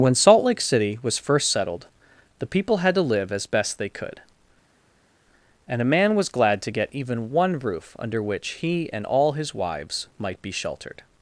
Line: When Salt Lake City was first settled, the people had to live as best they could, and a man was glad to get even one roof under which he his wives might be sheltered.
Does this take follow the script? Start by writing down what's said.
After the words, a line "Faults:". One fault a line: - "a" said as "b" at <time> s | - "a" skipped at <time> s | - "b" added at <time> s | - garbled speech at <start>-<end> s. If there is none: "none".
When Salt Lake City was first settled, the people had to live as best they could, and a man was glad to get even one roof under which he and all his wives might be sheltered.
Faults:
- "and all" added at 8.9 s